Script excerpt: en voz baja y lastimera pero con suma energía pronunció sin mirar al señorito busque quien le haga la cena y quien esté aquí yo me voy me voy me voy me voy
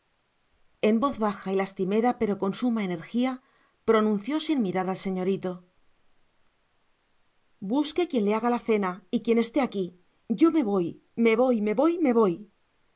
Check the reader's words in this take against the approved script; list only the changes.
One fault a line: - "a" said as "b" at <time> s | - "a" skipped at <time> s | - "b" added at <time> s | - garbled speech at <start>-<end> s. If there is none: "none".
none